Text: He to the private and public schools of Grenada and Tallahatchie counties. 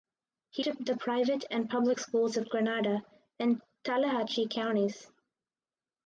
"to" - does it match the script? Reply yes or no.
yes